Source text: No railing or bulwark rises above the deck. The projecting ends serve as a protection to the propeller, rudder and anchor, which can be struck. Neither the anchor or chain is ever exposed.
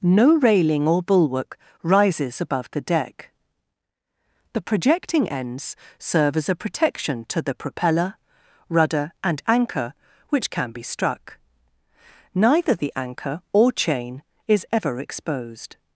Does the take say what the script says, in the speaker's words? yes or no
yes